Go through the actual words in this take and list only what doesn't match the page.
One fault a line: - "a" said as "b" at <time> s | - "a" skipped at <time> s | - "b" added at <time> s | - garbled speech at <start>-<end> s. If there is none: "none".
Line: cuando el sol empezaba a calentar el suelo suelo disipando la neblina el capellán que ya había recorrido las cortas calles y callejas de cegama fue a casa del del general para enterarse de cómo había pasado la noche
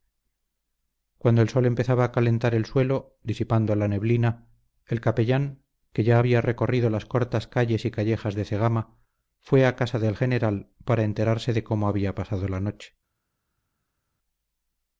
- "suelo" skipped at 3.2 s
- "del" skipped at 10.1 s